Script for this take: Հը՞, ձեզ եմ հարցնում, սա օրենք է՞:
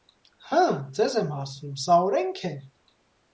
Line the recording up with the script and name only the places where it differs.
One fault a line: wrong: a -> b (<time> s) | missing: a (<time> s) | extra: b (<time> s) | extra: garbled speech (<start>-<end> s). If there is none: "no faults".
no faults